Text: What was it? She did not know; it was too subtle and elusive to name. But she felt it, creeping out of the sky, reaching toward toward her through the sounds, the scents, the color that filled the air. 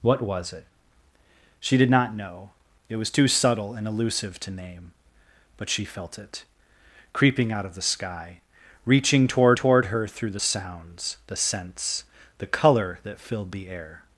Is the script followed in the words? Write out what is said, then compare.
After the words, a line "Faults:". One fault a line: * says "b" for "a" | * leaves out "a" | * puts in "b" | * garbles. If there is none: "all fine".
What was it? She did not know; it was too subtle and elusive to name. But she felt it, creeping out of the sky, reaching toward toward her through the sounds, the scents, the color that filled the air.
Faults:
all fine